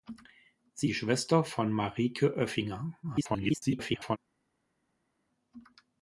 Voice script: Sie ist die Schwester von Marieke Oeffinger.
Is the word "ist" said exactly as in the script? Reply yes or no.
no